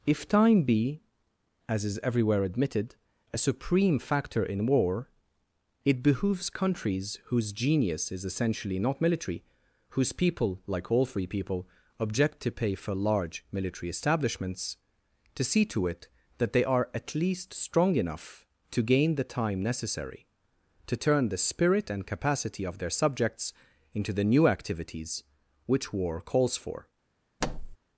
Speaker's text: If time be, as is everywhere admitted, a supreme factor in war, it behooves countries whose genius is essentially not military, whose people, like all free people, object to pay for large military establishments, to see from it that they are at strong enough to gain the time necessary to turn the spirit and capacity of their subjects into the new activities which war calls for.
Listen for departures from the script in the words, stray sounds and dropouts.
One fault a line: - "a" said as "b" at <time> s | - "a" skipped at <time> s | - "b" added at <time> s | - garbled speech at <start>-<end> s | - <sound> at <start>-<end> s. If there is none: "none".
- "from" said as "to" at 15.7 s
- "least" added at 17.1 s
- thud at 27.4-27.8 s